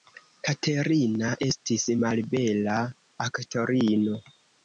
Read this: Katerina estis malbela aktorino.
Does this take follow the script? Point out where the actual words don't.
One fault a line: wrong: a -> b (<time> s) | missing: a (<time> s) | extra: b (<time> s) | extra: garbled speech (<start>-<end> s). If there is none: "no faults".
no faults